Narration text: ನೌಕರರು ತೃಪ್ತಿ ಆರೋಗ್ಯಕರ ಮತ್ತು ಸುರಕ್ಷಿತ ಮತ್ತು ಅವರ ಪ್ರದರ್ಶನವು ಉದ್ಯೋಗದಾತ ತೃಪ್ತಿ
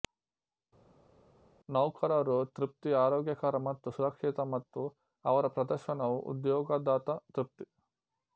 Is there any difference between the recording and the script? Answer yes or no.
no